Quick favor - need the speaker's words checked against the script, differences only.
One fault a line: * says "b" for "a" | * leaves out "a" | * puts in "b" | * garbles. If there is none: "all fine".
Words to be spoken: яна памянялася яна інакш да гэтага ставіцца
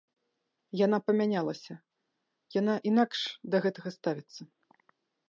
all fine